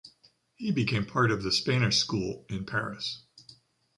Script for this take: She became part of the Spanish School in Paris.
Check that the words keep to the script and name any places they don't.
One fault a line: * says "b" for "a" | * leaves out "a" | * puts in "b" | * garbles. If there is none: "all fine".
* says "He" for "She"